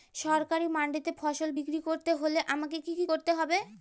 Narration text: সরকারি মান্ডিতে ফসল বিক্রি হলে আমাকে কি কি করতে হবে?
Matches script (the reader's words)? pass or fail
fail